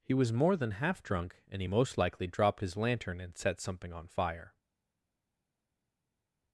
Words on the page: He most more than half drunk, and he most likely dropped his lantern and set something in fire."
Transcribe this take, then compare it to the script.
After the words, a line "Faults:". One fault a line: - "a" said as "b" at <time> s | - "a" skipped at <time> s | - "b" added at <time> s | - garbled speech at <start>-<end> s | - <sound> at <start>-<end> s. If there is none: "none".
He was more than half drunk, and he most likely dropped his lantern and set something on fire."
Faults:
- "most" said as "was" at 0.1 s
- "in" said as "on" at 3.9 s